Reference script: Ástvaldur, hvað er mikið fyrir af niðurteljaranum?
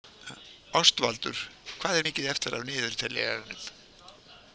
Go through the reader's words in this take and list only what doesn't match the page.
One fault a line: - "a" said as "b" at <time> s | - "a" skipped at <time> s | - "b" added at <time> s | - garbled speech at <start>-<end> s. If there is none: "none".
- "fyrir" said as "eftir" at 2.3 s